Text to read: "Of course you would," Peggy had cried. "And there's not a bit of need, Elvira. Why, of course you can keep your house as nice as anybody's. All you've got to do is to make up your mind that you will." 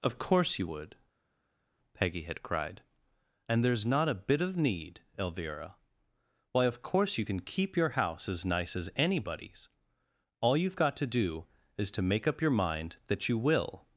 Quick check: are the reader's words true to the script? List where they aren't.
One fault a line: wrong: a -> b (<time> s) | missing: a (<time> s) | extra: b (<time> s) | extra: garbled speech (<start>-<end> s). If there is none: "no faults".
no faults